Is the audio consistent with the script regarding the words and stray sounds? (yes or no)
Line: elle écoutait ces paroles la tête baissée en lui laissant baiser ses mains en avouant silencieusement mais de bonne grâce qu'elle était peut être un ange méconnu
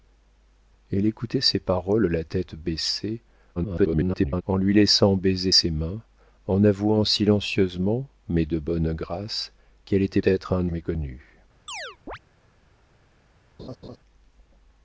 no